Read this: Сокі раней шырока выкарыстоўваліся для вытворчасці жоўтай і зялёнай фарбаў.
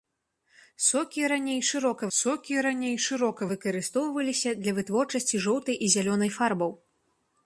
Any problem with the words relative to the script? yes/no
yes